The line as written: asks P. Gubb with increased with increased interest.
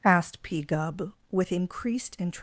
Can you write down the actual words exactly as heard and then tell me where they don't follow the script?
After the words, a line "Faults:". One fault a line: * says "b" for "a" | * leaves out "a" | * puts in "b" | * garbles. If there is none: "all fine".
asked P. Gubb with increased interest.
Faults:
* says "asked" for "asks"
* leaves out "with increased"